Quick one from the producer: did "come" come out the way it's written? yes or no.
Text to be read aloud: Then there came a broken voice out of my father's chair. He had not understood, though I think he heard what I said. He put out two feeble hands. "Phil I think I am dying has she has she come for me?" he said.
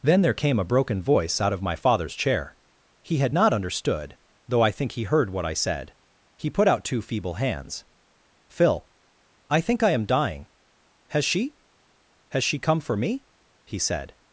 yes